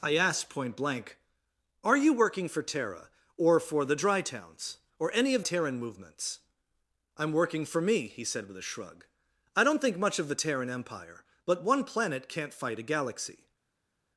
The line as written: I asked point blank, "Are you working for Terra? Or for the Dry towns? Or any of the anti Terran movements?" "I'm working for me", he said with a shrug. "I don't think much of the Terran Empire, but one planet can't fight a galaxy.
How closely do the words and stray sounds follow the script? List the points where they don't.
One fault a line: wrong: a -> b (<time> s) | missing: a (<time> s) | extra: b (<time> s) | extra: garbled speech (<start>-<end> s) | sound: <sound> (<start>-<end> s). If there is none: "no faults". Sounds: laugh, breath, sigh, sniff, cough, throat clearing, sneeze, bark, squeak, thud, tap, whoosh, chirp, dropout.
missing: the anti (5.4 s)